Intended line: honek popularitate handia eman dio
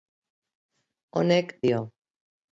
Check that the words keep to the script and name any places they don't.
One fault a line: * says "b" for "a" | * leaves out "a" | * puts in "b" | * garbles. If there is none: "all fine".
* leaves out "popularitate handia eman"